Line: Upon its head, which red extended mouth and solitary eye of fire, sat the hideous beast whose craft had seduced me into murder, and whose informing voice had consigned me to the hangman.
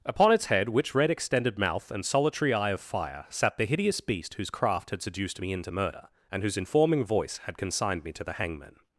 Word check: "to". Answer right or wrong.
right